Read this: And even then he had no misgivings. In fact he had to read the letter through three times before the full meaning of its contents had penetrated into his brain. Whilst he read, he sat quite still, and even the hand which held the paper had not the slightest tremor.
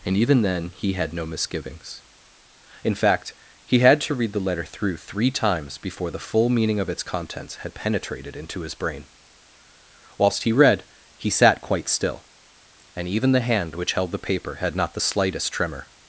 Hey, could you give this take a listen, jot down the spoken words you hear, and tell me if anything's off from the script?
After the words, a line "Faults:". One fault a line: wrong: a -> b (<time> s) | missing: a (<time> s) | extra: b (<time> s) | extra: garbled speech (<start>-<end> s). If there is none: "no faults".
And even then he had no misgivings. In fact he had to read the letter through three times before the full meaning of its contents had penetrated into his brain. Whilst he read, he sat quite still, and even the hand which held the paper had not the slightest tremor.
Faults:
no faults